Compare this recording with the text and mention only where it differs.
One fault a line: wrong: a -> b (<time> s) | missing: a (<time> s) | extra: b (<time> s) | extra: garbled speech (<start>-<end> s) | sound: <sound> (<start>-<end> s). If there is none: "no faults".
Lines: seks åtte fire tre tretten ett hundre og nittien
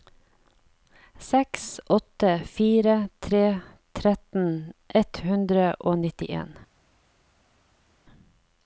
no faults